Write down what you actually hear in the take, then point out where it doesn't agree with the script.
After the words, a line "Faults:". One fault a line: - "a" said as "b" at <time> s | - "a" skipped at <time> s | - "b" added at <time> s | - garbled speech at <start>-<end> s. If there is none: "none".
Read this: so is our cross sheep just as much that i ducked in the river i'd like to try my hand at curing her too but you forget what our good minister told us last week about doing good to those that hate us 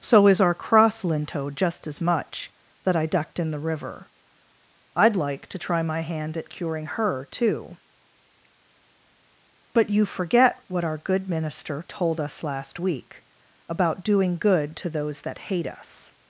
so is our cross linto just as much that i ducked in the river i'd like to try my hand at curing her too but you forget what our good minister told us last week about doing good to those that hate us
Faults:
- "sheep" said as "linto" at 1.0 s